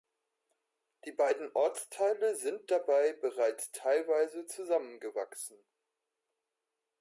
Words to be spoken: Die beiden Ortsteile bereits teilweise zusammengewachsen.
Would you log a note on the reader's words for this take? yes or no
yes